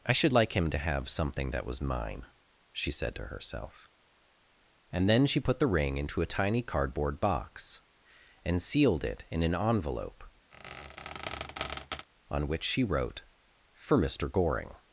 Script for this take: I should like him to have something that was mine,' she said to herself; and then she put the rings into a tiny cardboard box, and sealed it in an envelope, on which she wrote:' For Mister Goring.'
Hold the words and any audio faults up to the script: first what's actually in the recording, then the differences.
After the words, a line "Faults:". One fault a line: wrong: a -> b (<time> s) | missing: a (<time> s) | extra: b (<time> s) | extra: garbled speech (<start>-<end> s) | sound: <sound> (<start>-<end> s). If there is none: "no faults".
I should like him to have something that was mine,' she said to herself; and then she put the ring into a tiny cardboard box, and sealed it in an envelope, on which she wrote:' For Mister Goring.'
Faults:
wrong: rings -> ring (5.7 s)
sound: squeak (10.5-12.1 s)